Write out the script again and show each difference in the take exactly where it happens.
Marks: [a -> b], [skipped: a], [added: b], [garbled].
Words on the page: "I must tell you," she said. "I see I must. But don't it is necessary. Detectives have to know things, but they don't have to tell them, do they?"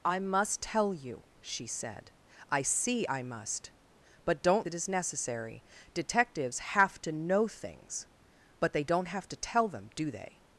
"I must tell you," she said. "I see I must. But don't it is necessary. Detectives have to know things, but they don't have to tell them, do they?"